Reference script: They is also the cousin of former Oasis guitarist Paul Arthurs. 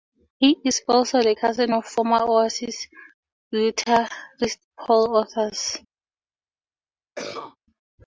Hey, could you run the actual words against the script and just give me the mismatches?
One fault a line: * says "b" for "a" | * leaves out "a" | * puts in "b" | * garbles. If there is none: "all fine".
* says "He" for "They"